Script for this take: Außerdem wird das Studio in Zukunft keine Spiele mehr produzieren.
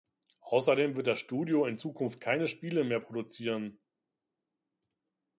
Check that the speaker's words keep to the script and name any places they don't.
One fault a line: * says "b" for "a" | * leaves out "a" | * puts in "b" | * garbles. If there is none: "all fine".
all fine